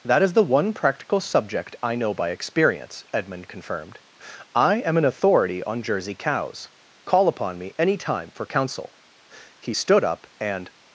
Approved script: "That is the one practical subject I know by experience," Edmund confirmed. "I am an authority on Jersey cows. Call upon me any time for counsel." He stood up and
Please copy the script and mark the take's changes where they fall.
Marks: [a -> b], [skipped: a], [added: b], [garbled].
"That is the one practical subject I know by experience," Edmund confirmed. "I am an authority on Jersey cows. Call upon me any time for counsel." He stood up and